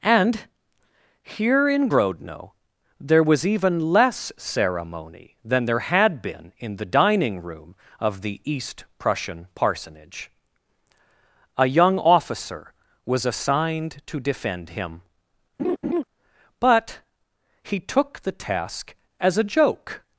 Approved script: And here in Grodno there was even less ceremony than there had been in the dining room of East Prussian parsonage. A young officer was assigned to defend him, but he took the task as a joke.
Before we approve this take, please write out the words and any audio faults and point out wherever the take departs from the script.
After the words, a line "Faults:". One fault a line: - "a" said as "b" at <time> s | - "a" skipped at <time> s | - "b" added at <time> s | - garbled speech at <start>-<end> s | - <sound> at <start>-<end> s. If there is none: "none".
And here in Grodno there was even less ceremony than there had been in the dining room of the East Prussian parsonage. A young officer was assigned to defend him, but he took the task as a joke.
Faults:
- "the" added at 8.2 s
- laugh at 15.6-16.0 s